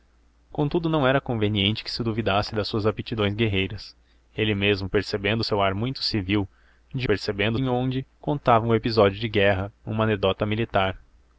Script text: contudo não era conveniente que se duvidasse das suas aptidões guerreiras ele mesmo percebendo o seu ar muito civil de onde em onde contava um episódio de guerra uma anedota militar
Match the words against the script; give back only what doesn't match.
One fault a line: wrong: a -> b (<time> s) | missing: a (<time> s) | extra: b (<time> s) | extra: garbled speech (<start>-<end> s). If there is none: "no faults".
wrong: onde -> percebendo (7.0 s)